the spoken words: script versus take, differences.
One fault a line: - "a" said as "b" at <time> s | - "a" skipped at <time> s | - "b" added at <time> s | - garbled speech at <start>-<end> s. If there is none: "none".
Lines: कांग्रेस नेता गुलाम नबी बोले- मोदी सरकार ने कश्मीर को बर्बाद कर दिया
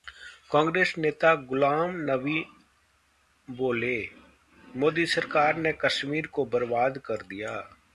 none